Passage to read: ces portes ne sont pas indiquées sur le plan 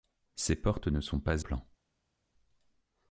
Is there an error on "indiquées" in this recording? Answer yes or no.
yes